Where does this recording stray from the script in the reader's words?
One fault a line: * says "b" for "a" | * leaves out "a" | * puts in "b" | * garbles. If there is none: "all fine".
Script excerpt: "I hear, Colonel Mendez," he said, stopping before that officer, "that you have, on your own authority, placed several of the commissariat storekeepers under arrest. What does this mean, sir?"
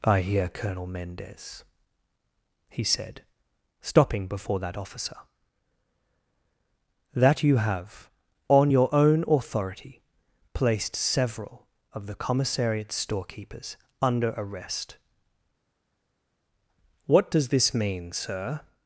all fine